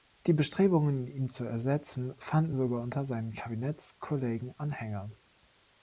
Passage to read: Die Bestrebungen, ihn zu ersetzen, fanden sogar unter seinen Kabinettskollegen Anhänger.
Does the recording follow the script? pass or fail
pass